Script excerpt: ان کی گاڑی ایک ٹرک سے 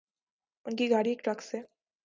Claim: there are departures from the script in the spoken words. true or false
false